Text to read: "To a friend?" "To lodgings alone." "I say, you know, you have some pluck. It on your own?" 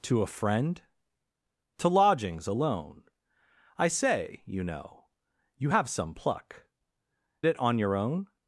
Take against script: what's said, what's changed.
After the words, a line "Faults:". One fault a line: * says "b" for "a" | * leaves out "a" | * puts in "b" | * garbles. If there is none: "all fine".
"To a friend?" "To lodgings alone." "I say, you know, you have some pluck. It on your own?"
Faults:
all fine